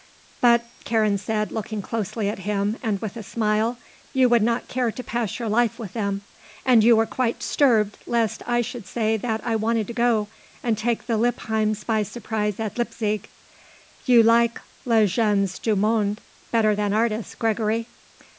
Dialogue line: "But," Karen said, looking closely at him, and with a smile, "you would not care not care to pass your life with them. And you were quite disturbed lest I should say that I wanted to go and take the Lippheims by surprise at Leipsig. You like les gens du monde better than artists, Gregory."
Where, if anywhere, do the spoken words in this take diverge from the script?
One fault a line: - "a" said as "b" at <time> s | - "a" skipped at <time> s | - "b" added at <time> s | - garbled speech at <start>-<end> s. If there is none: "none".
- "not care" skipped at 4.9 s